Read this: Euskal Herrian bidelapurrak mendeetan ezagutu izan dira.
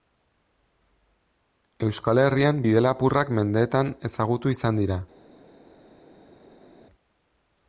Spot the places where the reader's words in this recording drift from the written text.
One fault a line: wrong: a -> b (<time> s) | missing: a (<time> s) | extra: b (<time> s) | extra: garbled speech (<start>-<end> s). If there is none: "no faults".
no faults